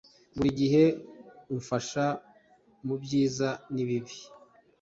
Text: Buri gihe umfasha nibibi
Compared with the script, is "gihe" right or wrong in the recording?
right